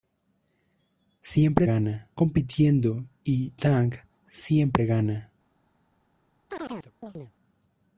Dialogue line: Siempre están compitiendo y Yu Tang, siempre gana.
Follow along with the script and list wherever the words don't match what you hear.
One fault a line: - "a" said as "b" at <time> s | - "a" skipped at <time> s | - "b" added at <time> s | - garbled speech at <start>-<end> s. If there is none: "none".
- "están" said as "gana" at 1.6 s
- "Yu" skipped at 3.5 s